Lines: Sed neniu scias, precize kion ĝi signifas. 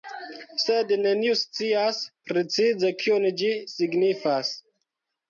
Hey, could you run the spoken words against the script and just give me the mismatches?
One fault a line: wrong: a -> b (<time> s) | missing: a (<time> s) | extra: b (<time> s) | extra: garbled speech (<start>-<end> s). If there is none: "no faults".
no faults